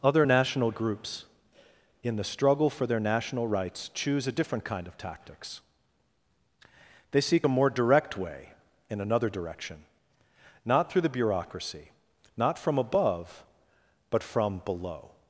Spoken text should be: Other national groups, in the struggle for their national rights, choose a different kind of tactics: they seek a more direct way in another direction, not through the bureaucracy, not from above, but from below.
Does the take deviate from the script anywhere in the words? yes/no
no